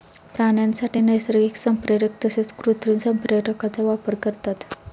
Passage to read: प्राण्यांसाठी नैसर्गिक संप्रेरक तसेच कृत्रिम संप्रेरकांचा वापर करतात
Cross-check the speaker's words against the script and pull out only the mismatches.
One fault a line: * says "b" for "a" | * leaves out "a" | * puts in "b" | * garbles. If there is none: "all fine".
all fine